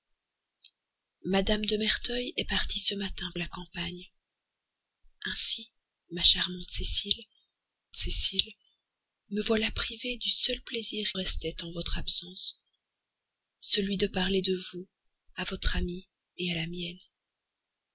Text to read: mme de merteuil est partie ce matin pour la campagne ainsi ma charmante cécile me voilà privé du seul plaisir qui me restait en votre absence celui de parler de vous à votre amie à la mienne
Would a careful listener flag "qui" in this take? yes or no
yes